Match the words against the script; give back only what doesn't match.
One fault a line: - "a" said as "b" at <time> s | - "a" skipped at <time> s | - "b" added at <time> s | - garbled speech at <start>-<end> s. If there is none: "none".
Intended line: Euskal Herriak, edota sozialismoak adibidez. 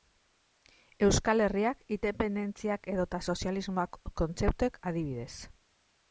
- "independentziak" added at 2.0 s
- "kontzeptuek" added at 4.2 s